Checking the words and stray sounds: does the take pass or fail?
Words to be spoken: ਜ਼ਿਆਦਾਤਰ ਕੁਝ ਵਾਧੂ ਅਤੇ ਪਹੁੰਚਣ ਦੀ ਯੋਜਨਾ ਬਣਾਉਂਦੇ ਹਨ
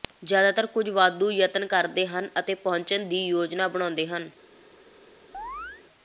fail